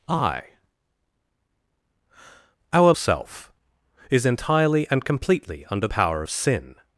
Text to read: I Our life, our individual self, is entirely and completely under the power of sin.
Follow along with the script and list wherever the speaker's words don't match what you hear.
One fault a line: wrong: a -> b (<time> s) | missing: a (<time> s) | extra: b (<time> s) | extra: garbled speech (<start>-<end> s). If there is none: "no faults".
missing: life our individual (2.9 s)
missing: the (5.9 s)